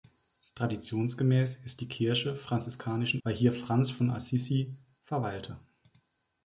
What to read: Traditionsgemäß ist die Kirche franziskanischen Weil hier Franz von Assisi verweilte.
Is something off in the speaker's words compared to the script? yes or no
no